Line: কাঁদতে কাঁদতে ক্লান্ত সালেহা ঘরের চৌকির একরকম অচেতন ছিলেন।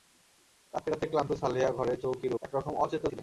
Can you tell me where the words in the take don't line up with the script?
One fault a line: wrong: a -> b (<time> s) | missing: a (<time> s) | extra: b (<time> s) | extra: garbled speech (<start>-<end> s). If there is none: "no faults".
no faults